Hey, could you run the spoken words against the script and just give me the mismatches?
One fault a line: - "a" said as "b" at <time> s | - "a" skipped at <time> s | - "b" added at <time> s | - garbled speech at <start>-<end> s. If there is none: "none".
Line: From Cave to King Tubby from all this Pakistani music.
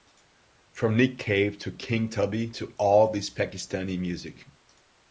- "Nick" added at 1.0 s
- "from" said as "to" at 2.5 s